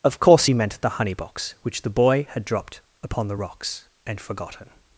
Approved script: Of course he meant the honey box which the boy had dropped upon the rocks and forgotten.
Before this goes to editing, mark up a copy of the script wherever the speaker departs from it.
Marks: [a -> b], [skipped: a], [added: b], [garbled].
Of course he meant the honey box which the boy had dropped upon the rocks and forgotten.